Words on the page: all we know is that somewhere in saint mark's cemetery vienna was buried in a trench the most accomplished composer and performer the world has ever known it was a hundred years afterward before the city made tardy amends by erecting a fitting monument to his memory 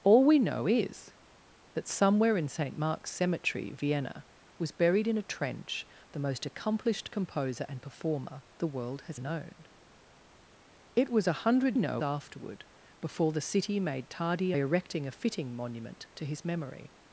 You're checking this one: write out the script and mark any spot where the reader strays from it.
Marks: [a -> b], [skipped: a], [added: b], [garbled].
all we know is that somewhere in saint mark's cemetery vienna was buried in a trench the most accomplished composer and performer the world has [skipped: ever] known it was a hundred [years -> know] afterward before the city made tardy [skipped: amends by] erecting a fitting monument to his memory